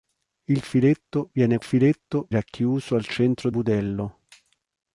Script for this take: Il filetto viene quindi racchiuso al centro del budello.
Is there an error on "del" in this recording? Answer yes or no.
yes